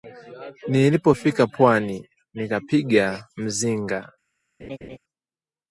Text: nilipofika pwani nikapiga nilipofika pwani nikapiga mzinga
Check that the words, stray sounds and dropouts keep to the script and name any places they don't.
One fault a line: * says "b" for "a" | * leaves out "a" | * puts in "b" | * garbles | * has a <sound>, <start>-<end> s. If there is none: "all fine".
* leaves out "nilipofika pwani nikapiga"
* has a laugh, 4.6-5.0 s